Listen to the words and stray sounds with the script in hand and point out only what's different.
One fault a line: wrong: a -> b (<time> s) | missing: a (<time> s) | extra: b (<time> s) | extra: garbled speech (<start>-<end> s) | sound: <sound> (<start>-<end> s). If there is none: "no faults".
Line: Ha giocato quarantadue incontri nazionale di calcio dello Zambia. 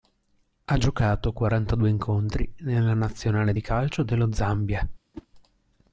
extra: nella (2.6 s)
sound: whoosh (5.1-5.3 s)